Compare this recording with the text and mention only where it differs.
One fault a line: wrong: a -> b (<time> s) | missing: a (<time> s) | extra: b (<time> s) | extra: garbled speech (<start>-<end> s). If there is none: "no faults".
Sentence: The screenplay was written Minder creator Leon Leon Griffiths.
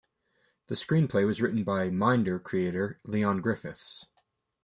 extra: by (1.6 s)
missing: Leon (3.4 s)